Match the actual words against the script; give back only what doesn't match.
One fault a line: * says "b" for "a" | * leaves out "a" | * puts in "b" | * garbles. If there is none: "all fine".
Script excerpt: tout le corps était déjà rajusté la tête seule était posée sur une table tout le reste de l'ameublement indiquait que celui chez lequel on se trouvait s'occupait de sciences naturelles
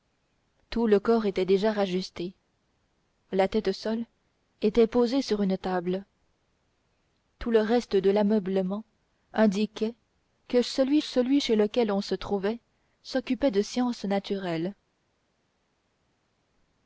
* puts in "celui"